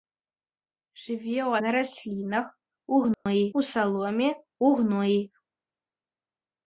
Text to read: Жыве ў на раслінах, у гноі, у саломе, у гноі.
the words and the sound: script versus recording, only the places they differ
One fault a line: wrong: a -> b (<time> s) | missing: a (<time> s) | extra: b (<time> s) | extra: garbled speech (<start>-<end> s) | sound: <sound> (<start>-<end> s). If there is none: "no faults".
sound: dropout (3.1-3.3 s)